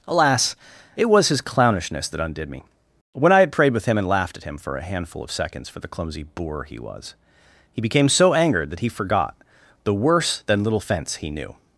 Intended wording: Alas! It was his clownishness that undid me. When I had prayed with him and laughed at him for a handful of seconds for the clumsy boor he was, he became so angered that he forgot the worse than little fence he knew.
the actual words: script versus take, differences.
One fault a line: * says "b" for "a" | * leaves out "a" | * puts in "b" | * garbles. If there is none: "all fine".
all fine